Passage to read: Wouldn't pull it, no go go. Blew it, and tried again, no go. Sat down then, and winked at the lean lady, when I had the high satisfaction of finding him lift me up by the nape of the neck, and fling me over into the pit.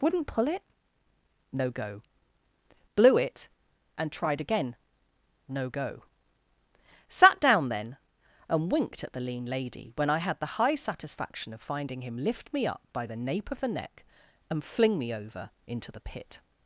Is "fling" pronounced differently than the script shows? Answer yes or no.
no